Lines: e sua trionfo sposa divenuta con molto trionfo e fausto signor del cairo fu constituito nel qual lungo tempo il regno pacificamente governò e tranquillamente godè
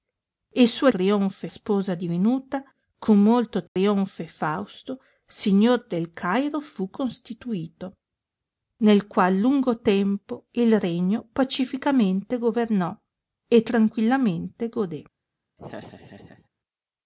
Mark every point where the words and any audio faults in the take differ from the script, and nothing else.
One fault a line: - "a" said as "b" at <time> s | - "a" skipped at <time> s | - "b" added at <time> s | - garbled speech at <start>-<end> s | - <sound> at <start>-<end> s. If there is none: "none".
- dropout at 3.7-3.8 s
- laugh at 15.6-16.5 s